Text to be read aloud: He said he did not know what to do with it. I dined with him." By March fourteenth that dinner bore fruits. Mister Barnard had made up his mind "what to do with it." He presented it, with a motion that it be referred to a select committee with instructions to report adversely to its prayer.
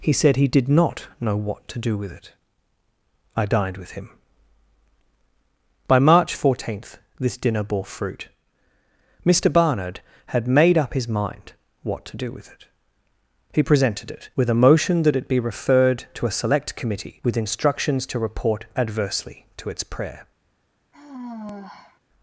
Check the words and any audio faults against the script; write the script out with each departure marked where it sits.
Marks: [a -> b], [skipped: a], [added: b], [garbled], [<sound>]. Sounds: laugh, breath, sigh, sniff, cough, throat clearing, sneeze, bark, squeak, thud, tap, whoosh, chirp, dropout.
He said he did not know what to do with it. I dined with him." By March fourteenth [that -> this] dinner bore [fruits. -> fruit] Mister Barnard had made up his mind "what to do with it." He presented it, with a motion that it be referred to a select committee with instructions to report adversely to its prayer. [sigh]